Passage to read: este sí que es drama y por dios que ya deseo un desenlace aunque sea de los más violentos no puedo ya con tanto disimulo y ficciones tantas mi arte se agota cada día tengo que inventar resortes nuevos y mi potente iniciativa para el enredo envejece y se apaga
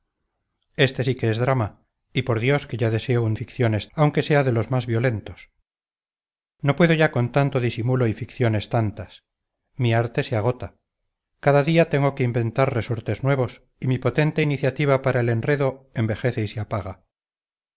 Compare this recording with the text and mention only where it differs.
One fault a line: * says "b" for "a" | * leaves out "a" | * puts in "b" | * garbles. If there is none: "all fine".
* says "ficciones" for "desenlace"